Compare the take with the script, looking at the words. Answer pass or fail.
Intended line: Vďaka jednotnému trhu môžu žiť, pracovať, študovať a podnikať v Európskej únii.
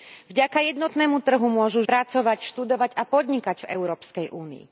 fail